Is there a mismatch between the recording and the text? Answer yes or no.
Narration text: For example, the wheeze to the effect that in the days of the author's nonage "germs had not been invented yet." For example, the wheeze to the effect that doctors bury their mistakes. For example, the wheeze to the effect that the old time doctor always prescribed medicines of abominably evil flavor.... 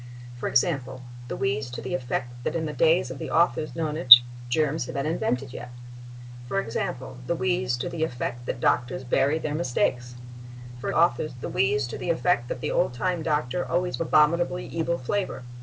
yes